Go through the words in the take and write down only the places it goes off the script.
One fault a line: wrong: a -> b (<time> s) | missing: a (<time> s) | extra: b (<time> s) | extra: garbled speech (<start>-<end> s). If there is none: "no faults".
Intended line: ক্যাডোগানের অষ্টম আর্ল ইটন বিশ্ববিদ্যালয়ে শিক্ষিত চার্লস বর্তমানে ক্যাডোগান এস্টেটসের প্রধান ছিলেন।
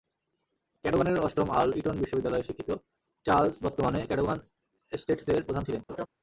no faults